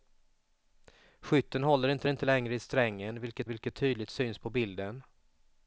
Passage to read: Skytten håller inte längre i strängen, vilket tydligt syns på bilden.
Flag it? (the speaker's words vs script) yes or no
yes